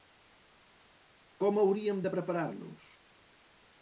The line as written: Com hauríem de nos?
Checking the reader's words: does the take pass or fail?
fail